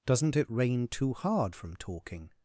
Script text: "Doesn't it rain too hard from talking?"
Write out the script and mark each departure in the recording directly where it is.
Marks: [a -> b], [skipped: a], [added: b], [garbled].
"Doesn't it rain too hard from talking?"